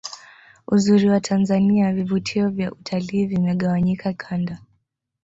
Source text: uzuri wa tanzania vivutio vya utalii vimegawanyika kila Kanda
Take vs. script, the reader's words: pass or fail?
fail